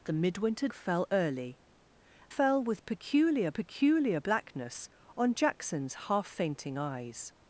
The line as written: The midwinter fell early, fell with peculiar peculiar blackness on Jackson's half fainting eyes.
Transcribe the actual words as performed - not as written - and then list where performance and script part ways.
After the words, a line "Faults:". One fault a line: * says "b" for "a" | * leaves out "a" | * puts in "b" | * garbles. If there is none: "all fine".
The midwinter fell early, fell with peculiar peculiar blackness on Jackson's half fainting eyes.
Faults:
all fine